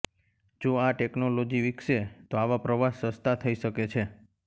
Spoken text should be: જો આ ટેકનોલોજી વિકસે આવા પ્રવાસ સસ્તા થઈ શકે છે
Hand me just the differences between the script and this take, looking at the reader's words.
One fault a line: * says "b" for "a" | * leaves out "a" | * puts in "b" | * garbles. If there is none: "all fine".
* puts in "તો"